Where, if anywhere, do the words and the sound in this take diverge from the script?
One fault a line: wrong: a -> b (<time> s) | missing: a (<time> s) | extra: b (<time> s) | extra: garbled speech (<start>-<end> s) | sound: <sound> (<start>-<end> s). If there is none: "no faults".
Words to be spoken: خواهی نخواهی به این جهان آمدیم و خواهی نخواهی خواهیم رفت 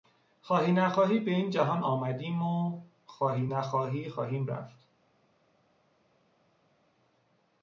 no faults